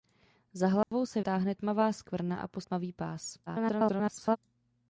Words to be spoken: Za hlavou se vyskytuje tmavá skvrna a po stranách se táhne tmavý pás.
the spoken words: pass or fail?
fail